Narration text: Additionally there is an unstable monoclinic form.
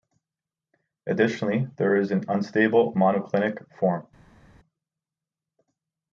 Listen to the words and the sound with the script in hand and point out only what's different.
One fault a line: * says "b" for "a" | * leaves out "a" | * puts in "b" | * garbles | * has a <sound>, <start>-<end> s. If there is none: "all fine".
all fine